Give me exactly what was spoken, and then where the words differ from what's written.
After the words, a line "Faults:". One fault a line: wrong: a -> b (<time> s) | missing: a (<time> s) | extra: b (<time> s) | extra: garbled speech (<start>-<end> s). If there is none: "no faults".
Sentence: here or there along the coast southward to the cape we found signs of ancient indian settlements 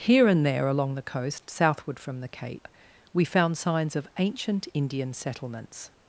here and there along the coast southward from the cape we found signs of ancient indian settlements
Faults:
wrong: or -> and (0.3 s)
wrong: to -> from (2.0 s)